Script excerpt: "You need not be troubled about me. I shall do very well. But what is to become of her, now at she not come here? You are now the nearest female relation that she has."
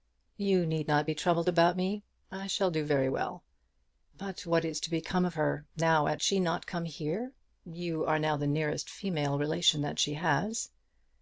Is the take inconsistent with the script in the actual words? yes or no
no